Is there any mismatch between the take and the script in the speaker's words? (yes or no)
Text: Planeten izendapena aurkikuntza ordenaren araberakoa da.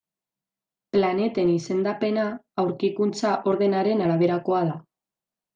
no